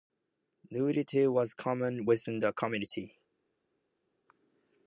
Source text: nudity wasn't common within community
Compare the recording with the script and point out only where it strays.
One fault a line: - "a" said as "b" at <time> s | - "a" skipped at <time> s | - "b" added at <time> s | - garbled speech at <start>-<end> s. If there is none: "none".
- "wasn't" said as "was" at 1.3 s
- "the" added at 2.4 s